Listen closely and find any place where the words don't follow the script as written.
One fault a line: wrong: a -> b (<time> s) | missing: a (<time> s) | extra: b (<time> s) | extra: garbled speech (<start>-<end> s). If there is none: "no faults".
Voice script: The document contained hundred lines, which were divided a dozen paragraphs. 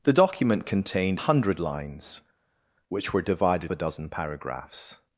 no faults